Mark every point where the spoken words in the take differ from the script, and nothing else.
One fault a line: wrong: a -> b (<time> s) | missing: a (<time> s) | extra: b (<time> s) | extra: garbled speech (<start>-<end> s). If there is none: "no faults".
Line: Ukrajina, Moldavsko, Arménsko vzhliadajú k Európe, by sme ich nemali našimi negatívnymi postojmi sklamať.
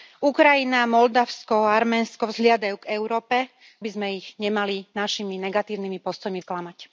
no faults